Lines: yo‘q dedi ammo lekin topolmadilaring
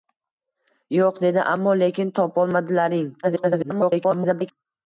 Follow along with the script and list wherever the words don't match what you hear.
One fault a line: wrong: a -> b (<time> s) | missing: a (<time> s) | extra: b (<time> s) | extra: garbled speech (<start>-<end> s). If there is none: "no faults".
extra: garbled speech (3.2-4.5 s)